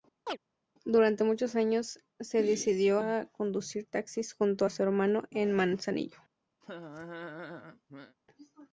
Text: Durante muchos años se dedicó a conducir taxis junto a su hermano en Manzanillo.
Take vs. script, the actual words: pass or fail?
pass